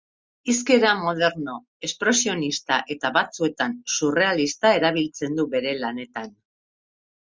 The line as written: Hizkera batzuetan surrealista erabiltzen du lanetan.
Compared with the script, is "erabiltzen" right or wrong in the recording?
right